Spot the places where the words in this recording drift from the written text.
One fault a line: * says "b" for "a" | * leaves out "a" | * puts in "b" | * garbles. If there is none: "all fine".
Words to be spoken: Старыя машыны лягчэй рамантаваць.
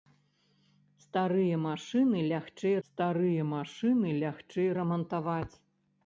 * puts in "старыя машыны лягчэй"